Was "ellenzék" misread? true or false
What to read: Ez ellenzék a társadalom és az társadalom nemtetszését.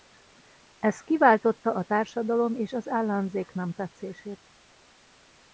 true